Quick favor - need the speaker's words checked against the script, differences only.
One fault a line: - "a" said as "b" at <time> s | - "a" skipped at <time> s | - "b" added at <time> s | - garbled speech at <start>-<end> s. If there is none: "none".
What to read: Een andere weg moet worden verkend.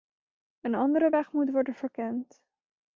none